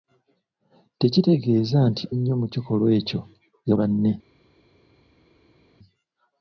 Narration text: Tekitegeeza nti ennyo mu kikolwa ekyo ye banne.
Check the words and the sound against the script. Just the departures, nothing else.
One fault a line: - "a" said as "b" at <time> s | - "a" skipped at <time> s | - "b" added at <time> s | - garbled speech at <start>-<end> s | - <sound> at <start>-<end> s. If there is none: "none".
none